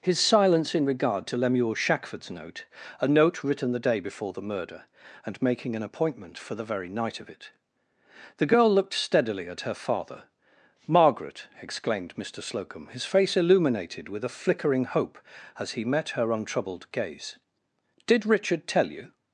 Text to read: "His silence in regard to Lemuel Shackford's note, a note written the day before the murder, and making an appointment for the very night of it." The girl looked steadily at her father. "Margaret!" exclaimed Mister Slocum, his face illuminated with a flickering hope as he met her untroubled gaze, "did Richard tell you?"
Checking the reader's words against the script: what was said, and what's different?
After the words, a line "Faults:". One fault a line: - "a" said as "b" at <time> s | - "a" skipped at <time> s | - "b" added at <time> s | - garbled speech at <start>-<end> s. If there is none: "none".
"His silence in regard to Lemuel Shackford's note, a note written the day before the murder, and making an appointment for the very night of it." The girl looked steadily at her father. "Margaret!" exclaimed Mister Slocum, his face illuminated with a flickering hope as he met her untroubled gaze, "did Richard tell you?"
Faults:
none